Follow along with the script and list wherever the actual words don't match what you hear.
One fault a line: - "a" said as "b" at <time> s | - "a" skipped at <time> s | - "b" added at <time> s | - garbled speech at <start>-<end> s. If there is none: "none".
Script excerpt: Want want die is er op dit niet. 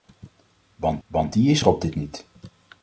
none